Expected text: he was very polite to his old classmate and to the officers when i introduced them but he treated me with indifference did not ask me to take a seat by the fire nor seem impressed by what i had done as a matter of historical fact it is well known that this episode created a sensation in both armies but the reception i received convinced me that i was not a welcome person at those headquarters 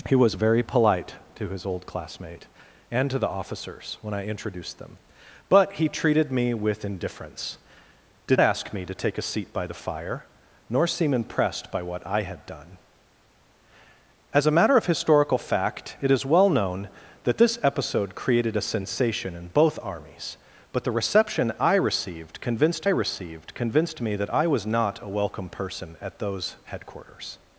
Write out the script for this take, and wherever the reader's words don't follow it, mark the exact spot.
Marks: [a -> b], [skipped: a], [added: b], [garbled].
he was very polite to his old classmate and to the officers when i introduced them but he treated me with indifference did [skipped: not] ask me to take a seat by the fire nor seem impressed by what i had done as a matter of historical fact it is well known that this episode created a sensation in both armies but the reception i received convinced [added: received convinced] me that i was not a welcome person at those headquarters